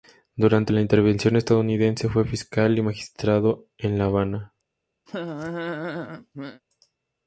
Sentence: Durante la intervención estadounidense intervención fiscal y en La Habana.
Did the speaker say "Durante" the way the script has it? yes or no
yes